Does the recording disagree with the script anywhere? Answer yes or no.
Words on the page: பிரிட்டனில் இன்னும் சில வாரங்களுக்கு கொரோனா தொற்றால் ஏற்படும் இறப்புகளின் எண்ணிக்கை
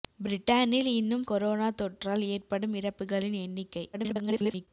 yes